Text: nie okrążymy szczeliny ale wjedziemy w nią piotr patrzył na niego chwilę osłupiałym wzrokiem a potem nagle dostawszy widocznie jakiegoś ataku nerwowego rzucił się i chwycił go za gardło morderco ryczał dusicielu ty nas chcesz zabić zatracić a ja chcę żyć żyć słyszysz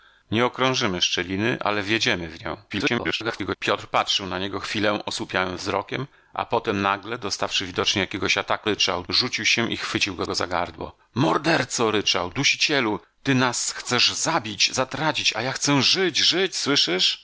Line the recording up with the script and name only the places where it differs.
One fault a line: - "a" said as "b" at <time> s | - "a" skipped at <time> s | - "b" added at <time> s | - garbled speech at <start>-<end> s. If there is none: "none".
- garbled speech at 2.7-3.6 s
- "nerwowego" said as "ryczał" at 8.6 s
- "go" added at 10.2 s